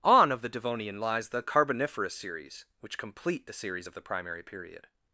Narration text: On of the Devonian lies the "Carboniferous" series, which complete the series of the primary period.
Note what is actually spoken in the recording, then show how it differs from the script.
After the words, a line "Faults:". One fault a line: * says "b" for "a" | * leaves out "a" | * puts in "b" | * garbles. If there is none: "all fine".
On of the Devonian lies the "Carboniferous" series, which complete the series of the primary period.
Faults:
all fine